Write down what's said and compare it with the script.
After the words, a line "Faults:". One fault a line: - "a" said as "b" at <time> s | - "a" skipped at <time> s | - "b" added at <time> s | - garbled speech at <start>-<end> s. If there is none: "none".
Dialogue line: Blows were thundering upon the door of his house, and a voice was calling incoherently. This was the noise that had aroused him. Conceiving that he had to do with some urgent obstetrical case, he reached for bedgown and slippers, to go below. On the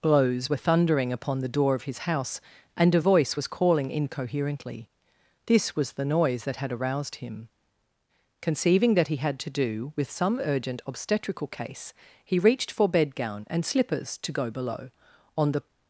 Blows were thundering upon the door of his house, and a voice was calling incoherently. This was the noise that had aroused him. Conceiving that he had to do with some urgent obstetrical case, he reached for bedgown and slippers, to go below. On the
Faults:
none